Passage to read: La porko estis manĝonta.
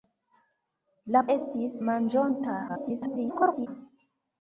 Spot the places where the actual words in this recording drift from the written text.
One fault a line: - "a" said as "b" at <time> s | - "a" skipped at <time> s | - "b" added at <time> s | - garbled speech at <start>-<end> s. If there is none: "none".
- "porko" skipped at 1.2 s
- garbled speech at 2.7-3.7 s